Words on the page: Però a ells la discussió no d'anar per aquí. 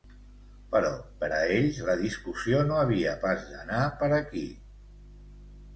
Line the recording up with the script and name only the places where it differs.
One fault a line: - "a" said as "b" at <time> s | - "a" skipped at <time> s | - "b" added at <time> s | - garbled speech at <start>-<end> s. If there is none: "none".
- "per" added at 1.2 s
- "havia pas" added at 2.8 s